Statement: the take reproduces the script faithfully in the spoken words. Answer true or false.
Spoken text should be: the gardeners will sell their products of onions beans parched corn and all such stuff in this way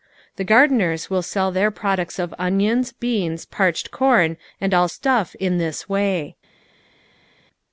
false